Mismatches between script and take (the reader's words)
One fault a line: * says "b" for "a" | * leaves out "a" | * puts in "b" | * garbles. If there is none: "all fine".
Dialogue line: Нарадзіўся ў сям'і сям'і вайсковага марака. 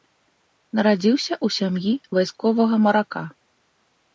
* leaves out "сям'і"